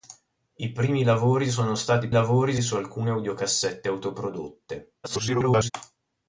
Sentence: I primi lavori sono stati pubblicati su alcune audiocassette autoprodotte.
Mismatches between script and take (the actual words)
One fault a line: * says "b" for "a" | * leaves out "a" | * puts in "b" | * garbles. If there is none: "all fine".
* says "lavori" for "pubblicati"
* garbles